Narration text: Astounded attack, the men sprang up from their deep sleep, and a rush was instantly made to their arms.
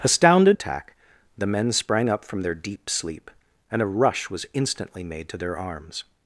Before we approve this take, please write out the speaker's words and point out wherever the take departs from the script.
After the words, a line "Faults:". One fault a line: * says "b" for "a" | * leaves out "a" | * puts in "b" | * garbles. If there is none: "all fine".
Astounded attack, the men sprang up from their deep sleep, and a rush was instantly made to their arms.
Faults:
all fine